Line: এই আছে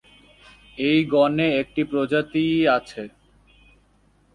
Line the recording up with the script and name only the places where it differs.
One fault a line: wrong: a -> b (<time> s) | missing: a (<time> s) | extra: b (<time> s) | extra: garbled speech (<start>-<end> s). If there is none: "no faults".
extra: গণে একটি প্রজাতিই (1.1 s)